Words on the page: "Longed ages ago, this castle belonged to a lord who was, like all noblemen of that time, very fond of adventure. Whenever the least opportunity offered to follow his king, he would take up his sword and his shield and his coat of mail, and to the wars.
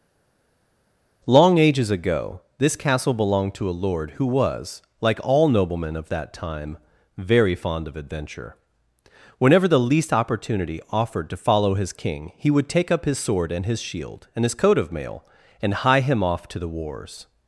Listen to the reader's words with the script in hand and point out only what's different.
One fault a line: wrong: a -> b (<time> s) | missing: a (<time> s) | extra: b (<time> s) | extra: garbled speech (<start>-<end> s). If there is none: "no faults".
wrong: Longed -> Long (1.3 s)
extra: hie him off (15.8 s)